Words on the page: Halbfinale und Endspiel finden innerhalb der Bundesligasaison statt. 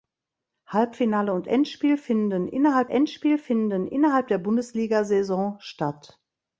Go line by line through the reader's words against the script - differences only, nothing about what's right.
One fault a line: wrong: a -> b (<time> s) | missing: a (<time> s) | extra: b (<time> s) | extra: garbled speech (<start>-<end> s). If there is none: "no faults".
extra: Endspiel finden innerhalb (2.9 s)